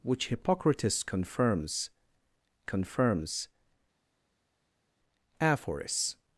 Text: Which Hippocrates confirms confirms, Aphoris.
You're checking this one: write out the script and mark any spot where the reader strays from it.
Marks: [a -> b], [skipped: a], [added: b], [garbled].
Which Hippocrates confirms confirms, Aphoris.